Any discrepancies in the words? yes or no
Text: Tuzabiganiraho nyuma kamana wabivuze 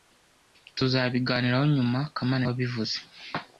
no